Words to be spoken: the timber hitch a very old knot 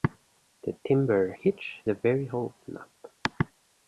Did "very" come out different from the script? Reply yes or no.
no